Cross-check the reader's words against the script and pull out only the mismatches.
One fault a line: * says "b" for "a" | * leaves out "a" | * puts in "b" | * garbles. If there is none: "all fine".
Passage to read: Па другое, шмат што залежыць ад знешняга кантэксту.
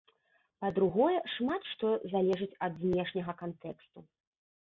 all fine